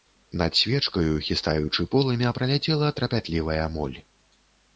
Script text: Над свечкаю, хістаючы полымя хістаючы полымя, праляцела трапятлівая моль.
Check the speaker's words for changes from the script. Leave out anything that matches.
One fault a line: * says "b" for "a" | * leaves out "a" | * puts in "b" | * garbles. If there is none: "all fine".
* leaves out "хістаючы полымя"